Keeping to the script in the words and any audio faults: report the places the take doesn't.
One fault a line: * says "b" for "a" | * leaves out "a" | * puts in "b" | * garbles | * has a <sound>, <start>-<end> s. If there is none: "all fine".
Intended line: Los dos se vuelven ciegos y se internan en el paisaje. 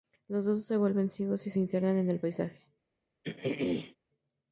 * has a throat clearing, 3.2-4.0 s